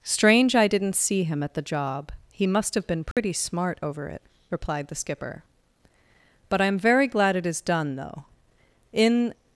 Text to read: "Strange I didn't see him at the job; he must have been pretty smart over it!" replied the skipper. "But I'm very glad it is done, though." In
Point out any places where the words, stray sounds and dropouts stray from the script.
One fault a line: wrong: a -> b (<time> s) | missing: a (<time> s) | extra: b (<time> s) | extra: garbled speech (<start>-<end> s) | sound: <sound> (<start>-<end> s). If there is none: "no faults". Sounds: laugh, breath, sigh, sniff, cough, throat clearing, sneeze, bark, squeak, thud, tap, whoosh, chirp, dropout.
sound: dropout (3.1-3.2 s)